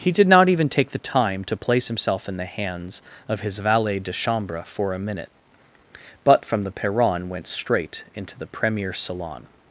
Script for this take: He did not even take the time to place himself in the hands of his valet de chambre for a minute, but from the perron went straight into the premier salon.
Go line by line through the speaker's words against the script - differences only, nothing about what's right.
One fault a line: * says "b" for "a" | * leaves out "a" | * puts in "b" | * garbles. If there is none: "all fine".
all fine